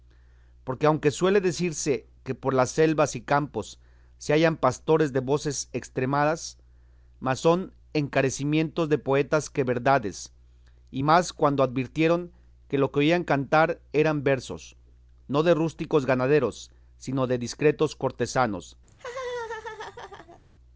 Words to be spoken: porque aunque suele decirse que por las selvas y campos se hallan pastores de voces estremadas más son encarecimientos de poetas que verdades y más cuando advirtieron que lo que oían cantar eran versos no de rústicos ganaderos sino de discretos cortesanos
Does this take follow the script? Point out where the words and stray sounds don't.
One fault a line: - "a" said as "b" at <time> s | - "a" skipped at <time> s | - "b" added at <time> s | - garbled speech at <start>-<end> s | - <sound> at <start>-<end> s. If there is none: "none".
- laugh at 18.9-20.4 s